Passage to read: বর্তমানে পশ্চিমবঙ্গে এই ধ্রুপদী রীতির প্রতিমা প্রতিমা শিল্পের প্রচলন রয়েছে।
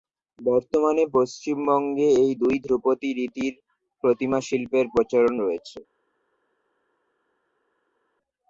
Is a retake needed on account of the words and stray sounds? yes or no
yes